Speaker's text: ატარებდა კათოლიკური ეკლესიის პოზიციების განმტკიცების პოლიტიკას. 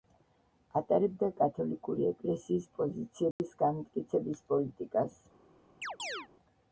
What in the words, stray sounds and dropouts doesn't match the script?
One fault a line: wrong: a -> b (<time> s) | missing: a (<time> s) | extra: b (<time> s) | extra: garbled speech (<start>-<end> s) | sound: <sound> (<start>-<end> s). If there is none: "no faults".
sound: dropout (3.3-3.4 s)
sound: chirp (5.8-6.3 s)